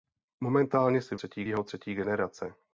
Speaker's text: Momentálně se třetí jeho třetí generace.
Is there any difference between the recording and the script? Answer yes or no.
no